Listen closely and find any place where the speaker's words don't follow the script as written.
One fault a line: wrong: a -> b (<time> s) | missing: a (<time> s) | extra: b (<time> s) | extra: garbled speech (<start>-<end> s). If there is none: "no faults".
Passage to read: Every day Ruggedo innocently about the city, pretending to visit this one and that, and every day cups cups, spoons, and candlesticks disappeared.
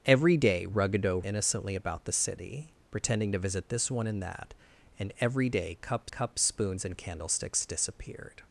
no faults